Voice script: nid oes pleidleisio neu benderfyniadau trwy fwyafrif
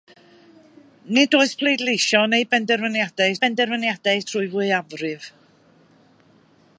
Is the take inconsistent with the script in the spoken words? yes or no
yes